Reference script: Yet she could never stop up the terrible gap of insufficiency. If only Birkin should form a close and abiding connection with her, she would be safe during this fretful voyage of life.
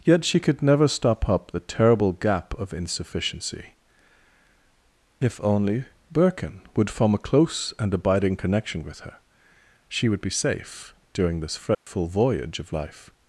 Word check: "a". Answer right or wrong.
right